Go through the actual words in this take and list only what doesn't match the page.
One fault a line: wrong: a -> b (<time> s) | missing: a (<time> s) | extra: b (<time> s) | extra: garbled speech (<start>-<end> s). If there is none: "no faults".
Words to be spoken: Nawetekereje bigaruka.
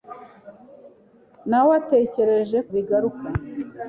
no faults